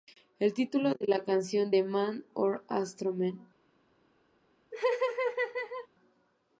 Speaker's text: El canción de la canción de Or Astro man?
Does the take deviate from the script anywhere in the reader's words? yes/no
yes